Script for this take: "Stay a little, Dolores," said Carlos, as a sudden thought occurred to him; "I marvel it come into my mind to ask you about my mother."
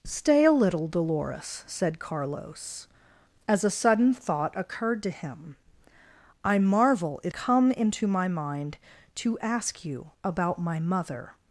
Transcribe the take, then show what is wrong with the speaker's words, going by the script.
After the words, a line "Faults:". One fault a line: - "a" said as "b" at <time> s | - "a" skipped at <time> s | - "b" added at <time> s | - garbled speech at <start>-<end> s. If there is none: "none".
"Stay a little, Dolores," said Carlos, as a sudden thought occurred to him; "I marvel it come into my mind to ask you about my mother."
Faults:
none